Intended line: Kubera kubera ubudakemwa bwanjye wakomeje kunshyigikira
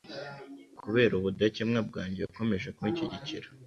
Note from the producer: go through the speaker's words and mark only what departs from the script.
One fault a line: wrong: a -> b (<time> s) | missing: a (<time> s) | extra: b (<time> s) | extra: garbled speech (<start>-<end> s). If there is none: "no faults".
missing: kubera (1.1 s)